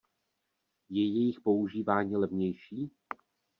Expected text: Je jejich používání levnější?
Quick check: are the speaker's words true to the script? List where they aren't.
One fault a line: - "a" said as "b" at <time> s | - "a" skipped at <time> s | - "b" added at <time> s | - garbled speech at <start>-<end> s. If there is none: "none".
none